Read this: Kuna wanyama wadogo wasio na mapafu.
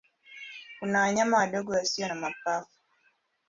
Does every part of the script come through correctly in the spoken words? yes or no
yes